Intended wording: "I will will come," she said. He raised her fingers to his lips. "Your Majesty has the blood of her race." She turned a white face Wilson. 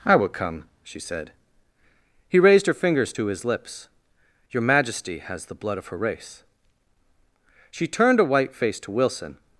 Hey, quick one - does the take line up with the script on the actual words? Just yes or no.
no